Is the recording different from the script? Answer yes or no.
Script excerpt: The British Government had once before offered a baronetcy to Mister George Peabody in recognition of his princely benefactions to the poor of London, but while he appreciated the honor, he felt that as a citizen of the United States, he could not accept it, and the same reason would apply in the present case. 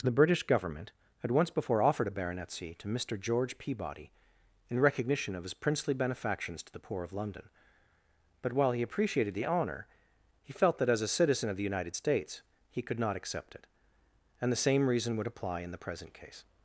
no